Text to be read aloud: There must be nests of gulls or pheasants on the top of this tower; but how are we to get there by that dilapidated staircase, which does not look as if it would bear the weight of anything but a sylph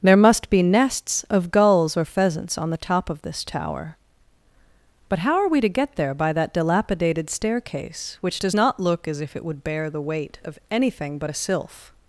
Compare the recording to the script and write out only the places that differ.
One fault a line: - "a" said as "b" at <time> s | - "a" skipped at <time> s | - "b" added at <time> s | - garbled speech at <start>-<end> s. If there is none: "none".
none